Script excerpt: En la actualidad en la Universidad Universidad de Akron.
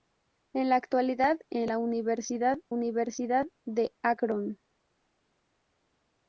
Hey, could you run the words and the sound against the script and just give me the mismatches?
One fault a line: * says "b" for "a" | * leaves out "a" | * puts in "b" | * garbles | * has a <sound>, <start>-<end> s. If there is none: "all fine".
all fine